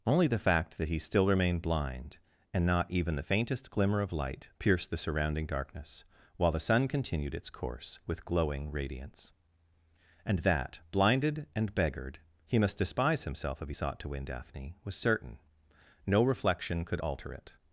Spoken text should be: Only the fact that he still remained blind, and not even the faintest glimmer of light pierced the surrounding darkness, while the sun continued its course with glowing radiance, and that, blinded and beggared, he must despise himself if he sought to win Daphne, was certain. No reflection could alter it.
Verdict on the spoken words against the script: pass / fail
pass